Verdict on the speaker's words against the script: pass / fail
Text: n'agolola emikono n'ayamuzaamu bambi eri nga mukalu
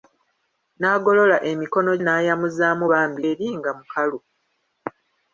pass